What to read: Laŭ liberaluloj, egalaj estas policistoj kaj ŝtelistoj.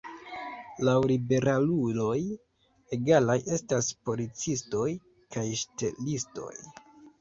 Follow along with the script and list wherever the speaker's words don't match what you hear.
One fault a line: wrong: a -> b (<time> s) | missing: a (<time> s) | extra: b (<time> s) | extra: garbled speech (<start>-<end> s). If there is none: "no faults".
no faults